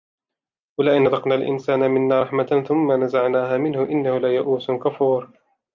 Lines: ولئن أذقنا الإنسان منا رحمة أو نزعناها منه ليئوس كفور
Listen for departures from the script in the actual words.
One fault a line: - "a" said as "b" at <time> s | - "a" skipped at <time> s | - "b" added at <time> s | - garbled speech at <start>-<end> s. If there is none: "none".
- "أو" said as "ثم" at 2.7 s
- "إنه" added at 3.8 s